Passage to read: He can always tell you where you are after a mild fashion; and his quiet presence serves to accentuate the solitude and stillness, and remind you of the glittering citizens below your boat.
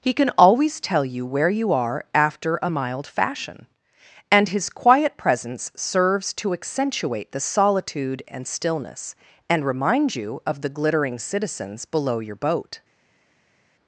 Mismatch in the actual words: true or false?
false